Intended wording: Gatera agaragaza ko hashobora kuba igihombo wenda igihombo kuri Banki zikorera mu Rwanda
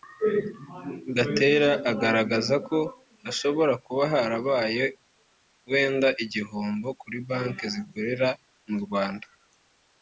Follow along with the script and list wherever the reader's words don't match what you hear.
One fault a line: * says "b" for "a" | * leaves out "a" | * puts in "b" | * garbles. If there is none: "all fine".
* says "harabaye" for "igihombo"